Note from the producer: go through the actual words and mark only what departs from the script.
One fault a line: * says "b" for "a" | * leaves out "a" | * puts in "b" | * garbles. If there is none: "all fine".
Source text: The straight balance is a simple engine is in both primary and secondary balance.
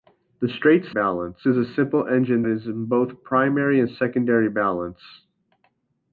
all fine